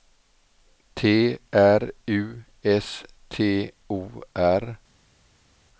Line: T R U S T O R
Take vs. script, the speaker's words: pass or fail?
pass